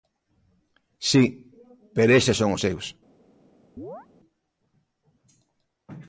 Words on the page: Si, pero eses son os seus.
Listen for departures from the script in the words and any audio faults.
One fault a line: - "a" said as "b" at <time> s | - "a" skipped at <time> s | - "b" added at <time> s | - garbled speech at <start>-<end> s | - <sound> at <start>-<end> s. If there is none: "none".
- chirp at 3.8-4.1 s